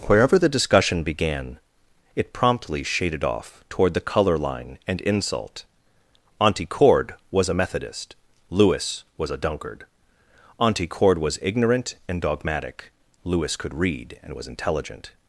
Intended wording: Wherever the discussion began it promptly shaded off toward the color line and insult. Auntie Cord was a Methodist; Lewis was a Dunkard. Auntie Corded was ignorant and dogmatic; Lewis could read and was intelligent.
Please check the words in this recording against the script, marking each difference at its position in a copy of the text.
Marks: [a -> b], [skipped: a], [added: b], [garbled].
Wherever the discussion began it promptly shaded off toward the color line and insult. Auntie Cord was a Methodist; Lewis was a Dunkard. Auntie [Corded -> Cord] was ignorant and dogmatic; Lewis could read and was intelligent.